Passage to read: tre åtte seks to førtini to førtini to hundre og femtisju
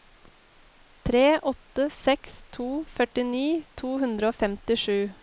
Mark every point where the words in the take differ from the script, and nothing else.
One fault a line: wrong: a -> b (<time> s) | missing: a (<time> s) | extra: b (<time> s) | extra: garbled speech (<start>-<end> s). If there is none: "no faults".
missing: førtini to (3.9 s)